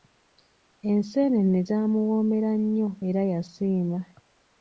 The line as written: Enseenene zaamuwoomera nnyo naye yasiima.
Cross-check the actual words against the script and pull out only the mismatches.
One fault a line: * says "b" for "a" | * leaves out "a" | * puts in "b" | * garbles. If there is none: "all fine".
* says "era" for "naye"